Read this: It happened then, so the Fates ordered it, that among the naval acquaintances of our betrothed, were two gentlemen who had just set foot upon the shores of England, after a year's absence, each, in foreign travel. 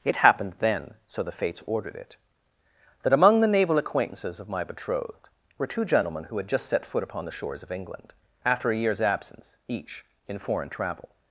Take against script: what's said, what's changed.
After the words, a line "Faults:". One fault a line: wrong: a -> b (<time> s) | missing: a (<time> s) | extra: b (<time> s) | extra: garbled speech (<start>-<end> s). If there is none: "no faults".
It happened then, so the Fates ordered it, that among the naval acquaintances of my betrothed, were two gentlemen who had just set foot upon the shores of England, after a year's absence, each, in foreign travel.
Faults:
wrong: our -> my (4.5 s)